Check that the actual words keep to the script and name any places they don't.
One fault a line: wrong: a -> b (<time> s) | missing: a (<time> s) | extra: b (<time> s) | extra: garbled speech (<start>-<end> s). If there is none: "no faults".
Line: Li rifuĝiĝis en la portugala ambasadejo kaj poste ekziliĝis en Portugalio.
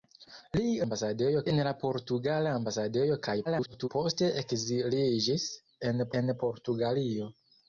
wrong: rifuĝiĝis -> ambasadejo (0.8 s)
extra: garbled speech (3.4-3.9 s)
extra: en (6.2 s)